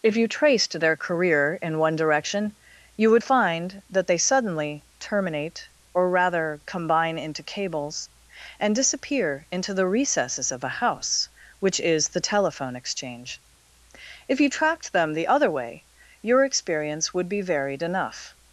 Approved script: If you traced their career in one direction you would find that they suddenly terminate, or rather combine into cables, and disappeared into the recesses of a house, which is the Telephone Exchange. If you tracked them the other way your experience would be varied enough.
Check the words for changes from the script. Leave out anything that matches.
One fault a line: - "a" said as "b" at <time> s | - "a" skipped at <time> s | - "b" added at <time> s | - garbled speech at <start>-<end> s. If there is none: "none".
- "disappeared" said as "disappear" at 8.8 s